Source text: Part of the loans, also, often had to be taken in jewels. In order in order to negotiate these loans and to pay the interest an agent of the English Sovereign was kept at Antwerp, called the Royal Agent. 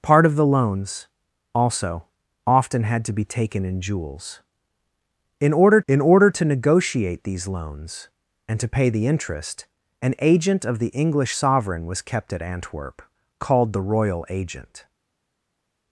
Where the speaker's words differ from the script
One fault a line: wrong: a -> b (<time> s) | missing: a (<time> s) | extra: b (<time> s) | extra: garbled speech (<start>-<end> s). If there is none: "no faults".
no faults